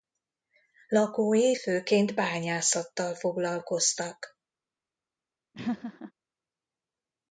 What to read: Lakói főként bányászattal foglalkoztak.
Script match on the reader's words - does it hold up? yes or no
yes